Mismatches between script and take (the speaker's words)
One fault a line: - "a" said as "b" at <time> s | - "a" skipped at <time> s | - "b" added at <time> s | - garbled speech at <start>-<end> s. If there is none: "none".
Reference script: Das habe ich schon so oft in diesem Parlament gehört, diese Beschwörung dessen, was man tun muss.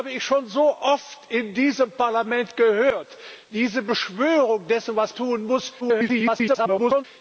- "man" skipped at 5.1 s
- garbled speech at 5.8-7.0 s